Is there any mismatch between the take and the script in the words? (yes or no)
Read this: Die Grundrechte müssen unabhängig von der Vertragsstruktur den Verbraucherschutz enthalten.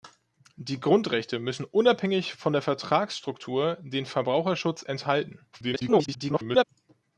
yes